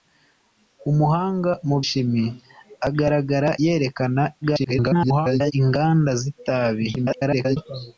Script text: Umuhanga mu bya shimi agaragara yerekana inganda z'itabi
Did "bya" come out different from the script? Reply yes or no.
yes